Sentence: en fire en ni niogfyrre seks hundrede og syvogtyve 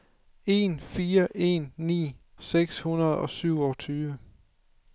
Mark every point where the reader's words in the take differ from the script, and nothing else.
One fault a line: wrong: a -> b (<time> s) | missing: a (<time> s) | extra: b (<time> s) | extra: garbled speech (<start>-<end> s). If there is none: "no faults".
missing: niogfyrre (2.1 s)